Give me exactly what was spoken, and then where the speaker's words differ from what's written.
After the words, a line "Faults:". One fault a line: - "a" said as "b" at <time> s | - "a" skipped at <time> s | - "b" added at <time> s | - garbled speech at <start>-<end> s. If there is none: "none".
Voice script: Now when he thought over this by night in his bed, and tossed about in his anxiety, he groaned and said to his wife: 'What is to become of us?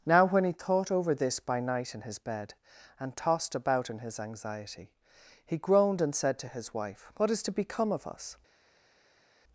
Now when he thought over this by night in his bed, and tossed about in his anxiety, he groaned and said to his wife: 'What is to become of us?
Faults:
none